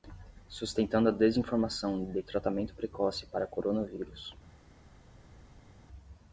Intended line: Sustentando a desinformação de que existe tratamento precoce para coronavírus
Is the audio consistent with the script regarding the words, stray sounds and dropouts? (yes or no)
no